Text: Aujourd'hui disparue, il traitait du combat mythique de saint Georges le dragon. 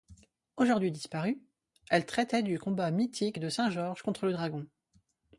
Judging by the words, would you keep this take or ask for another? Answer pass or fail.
fail